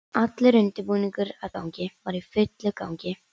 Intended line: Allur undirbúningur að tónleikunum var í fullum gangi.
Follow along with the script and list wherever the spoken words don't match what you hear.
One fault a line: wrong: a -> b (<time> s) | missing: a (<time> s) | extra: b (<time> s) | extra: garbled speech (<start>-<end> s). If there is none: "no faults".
wrong: tónleikunum -> gangi (1.6 s)